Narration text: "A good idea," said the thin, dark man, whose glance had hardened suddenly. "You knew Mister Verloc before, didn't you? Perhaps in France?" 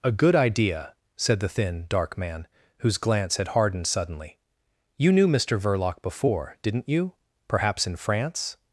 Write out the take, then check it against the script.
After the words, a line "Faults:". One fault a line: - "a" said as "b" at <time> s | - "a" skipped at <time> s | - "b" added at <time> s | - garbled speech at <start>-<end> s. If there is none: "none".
"A good idea," said the thin, dark man, whose glance had hardened suddenly. "You knew Mister Verloc before, didn't you? Perhaps in France?"
Faults:
none